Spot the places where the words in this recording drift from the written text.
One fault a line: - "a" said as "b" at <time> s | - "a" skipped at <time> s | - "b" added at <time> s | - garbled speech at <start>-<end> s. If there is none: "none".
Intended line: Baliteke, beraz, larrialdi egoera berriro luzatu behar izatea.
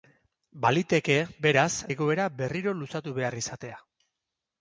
- "larrialdi" skipped at 1.7 s